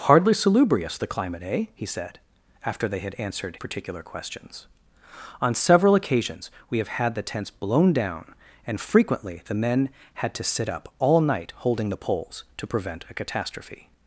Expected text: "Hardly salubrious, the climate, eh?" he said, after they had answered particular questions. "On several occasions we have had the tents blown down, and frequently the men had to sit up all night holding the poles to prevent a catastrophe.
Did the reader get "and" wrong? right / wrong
right